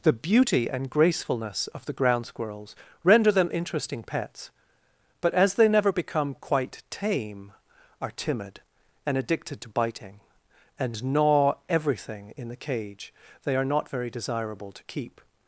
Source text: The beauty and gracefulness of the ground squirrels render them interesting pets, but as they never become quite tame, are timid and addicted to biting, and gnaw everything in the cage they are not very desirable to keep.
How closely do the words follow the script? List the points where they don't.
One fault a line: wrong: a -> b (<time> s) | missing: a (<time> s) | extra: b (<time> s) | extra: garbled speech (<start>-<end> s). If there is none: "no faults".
no faults